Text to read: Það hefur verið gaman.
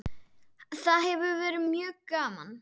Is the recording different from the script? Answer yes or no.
yes